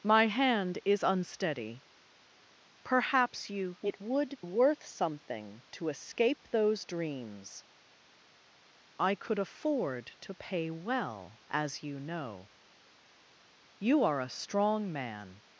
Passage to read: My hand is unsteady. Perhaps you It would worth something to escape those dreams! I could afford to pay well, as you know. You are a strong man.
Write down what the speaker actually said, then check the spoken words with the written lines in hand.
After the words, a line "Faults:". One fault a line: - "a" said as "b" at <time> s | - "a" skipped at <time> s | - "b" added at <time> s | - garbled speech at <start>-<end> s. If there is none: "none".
My hand is unsteady. Perhaps you It would worth something to escape those dreams! I could afford to pay well, as you know. You are a strong man.
Faults:
none